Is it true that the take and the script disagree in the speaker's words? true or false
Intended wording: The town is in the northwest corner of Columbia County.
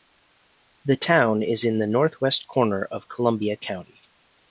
false